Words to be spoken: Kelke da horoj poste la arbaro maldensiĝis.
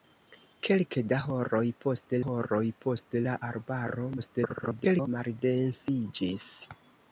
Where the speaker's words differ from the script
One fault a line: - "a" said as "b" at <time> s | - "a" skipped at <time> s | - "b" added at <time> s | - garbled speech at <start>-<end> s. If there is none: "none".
- "horoj poste" added at 2.2 s
- garbled speech at 4.2-5.1 s